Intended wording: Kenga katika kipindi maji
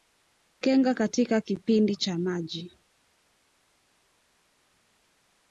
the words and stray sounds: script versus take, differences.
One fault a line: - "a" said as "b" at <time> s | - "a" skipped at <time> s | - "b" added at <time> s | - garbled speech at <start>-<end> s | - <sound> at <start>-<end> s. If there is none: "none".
- "cha" added at 1.9 s